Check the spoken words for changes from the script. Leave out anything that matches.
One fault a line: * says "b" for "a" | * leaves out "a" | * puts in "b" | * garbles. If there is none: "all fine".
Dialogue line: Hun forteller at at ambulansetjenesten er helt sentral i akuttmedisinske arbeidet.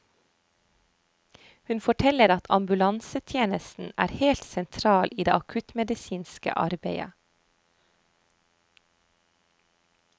* leaves out "at"
* puts in "det"